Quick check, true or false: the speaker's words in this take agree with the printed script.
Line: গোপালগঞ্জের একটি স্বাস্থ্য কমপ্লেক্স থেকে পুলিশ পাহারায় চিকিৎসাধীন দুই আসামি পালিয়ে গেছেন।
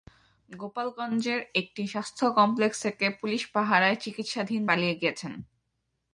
false